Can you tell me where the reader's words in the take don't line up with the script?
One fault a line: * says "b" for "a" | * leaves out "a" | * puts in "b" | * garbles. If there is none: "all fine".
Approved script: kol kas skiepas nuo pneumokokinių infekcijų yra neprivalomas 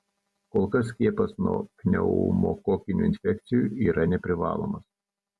all fine